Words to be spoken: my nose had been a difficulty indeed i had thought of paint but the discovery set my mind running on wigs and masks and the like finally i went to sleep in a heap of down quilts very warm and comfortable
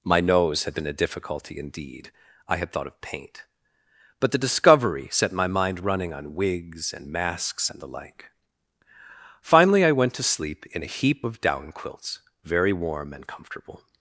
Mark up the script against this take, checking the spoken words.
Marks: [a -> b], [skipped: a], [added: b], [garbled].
my nose had been a difficulty indeed i had thought of paint but the discovery set my mind running on wigs and masks and the like finally i went to sleep in a heap of down quilts very warm and comfortable